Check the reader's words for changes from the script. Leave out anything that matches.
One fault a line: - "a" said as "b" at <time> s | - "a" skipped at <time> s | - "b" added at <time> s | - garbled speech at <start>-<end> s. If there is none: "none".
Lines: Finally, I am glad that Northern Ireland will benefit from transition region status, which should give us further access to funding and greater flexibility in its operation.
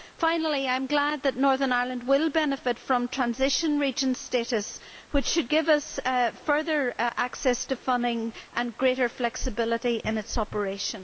none